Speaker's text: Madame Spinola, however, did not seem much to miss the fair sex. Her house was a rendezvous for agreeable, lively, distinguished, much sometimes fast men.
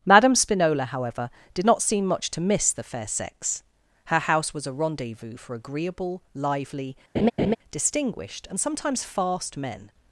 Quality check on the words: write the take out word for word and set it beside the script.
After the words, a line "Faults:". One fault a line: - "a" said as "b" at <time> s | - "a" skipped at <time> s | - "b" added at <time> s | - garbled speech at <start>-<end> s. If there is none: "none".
Madame Spinola, however, did not seem much to miss the fair sex. Her house was a rendezvous for agreeable, lively, distinguished, and sometimes fast men.
Faults:
- "much" said as "and" at 8.5 s